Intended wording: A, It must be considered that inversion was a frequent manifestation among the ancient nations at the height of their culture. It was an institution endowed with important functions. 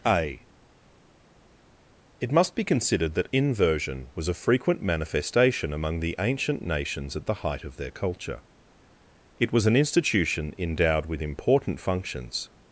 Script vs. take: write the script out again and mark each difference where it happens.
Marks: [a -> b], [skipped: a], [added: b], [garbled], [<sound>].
A, It must be considered that inversion was a frequent manifestation among the ancient nations at the height of their culture. It was an institution endowed with important functions.